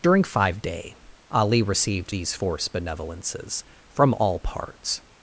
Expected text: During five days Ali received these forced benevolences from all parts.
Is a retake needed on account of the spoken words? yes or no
yes